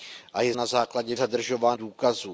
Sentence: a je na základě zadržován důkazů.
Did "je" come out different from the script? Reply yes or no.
no